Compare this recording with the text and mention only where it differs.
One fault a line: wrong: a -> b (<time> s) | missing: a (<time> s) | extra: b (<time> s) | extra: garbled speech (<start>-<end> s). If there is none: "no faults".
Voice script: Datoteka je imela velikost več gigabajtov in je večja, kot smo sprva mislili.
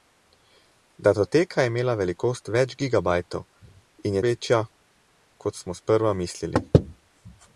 no faults